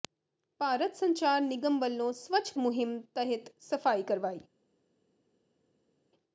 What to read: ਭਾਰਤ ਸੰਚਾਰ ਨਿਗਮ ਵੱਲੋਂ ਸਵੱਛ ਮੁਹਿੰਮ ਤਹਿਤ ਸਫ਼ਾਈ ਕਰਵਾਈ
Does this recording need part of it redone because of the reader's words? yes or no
no